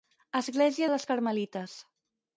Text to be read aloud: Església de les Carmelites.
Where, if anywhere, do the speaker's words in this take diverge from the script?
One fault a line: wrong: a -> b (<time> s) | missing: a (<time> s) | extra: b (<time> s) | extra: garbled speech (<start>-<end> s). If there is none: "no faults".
no faults